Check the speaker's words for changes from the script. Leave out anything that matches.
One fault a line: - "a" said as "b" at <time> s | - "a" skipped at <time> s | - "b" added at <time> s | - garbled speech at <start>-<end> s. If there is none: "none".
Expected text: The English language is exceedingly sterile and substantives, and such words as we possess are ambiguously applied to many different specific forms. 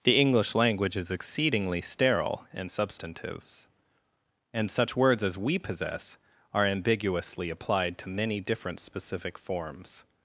none